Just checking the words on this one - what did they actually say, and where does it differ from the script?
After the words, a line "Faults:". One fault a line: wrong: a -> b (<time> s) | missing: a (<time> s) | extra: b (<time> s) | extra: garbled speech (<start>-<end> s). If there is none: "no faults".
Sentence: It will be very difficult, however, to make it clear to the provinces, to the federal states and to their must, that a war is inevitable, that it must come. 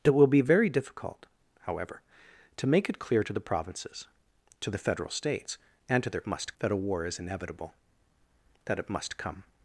It will be very difficult, however, to make it clear to the provinces, to the federal states and to their must, that a war is inevitable, that it must come.
Faults:
no faults